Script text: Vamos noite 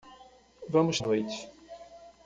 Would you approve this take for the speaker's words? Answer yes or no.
yes